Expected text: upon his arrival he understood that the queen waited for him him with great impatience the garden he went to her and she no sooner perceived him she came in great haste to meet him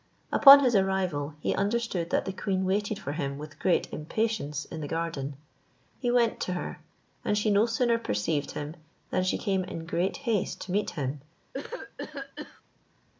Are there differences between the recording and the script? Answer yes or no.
yes